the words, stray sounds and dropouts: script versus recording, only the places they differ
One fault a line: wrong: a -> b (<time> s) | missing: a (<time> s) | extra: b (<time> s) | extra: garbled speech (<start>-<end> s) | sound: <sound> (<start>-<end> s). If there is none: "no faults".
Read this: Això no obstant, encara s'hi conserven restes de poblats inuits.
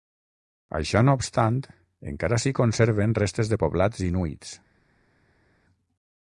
no faults